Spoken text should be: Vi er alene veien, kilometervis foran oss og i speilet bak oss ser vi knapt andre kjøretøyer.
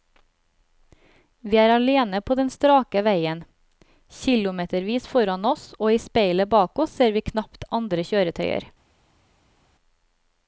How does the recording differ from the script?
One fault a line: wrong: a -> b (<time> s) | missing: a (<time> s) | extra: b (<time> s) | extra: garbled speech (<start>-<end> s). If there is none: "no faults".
extra: på den strake (2.2 s)